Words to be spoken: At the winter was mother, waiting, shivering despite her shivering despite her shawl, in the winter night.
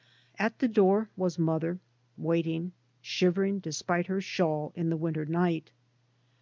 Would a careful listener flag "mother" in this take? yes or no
no